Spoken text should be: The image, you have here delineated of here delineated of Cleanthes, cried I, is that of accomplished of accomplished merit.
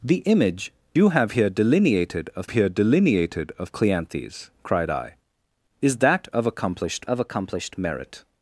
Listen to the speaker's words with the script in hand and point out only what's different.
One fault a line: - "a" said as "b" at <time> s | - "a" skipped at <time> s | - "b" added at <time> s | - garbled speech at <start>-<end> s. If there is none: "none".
none